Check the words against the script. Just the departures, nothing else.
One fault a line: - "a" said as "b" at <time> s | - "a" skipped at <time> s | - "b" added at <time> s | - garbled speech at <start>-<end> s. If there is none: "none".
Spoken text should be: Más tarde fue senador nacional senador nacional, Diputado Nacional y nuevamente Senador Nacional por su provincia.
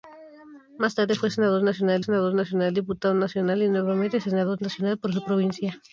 none